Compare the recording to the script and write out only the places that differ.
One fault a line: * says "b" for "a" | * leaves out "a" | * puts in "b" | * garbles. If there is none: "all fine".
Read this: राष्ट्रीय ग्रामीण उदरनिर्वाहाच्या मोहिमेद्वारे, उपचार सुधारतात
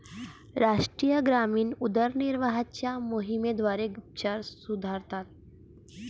all fine